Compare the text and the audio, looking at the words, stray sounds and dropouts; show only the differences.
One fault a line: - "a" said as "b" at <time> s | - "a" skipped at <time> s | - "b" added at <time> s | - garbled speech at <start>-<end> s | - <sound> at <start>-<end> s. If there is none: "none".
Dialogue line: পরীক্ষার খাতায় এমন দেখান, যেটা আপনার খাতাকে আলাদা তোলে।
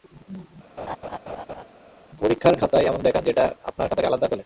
- laugh at 0.8-1.6 s